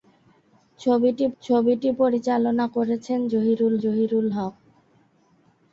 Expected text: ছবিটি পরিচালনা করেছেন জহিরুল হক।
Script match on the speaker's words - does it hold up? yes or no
no